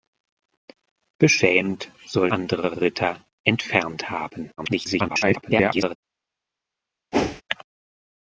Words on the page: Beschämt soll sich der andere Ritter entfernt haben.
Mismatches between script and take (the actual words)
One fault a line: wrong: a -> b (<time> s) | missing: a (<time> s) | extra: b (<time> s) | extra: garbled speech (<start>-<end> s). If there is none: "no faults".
missing: sich der (2.3 s)
extra: garbled speech (4.6-6.0 s)